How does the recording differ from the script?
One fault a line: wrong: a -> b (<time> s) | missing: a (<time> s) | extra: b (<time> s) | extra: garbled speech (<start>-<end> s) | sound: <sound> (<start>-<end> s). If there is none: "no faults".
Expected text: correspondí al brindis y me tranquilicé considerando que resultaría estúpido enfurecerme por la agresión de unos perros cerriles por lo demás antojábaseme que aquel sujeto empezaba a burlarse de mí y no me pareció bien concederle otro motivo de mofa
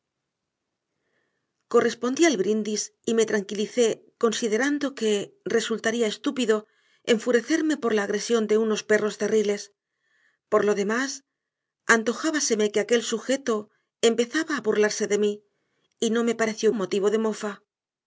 missing: bien concederle otro (16.7 s)